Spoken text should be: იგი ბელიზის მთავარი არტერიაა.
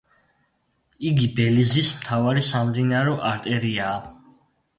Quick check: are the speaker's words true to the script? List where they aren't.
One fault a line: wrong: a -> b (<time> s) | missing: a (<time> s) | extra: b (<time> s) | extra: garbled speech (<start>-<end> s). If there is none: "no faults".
extra: სამდინარო (2.5 s)